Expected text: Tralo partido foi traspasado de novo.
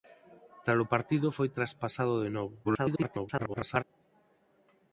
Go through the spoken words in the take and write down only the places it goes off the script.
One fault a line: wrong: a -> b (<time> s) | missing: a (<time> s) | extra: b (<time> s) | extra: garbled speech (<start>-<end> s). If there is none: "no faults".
extra: garbled speech (2.6-3.8 s)